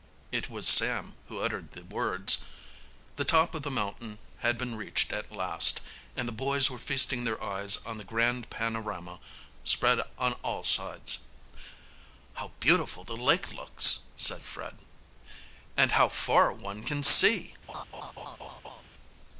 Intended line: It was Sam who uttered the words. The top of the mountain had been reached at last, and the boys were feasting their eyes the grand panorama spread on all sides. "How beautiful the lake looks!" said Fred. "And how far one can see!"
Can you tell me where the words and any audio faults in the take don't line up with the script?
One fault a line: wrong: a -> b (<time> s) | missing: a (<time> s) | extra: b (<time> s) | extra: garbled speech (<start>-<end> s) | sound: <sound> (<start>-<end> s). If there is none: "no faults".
extra: on (7.8 s)
sound: laugh (17.7-18.8 s)